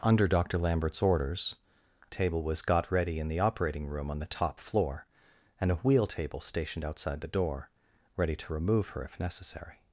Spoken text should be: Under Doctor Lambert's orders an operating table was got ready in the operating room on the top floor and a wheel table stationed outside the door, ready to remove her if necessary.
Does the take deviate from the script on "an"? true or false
true